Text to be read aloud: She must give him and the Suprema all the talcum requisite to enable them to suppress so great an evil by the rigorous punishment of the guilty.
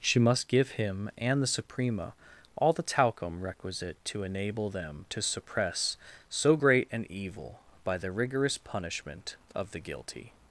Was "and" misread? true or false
false